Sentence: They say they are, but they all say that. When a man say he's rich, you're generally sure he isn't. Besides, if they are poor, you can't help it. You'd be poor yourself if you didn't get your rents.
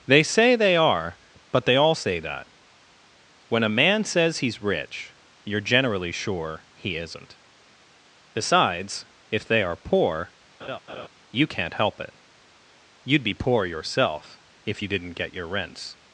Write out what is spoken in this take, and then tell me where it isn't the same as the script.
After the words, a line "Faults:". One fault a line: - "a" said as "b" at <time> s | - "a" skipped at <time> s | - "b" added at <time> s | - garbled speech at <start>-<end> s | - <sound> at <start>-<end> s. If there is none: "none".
They say they are, but they all say that. When a man says he's rich, you're generally sure he isn't. Besides, if they are poor, you can't help it. You'd be poor yourself if you didn't get your rents.
Faults:
- "say" said as "says" at 4.0 s
- laugh at 10.6-11.1 s